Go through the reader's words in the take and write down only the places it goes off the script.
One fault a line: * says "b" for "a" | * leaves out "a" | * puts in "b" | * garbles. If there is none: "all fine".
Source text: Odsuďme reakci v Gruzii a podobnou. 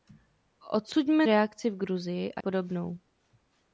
all fine